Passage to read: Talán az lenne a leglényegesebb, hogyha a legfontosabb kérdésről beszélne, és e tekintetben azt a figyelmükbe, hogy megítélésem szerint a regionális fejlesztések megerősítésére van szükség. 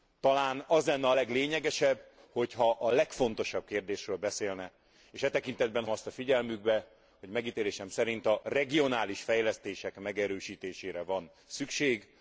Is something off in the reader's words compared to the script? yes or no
no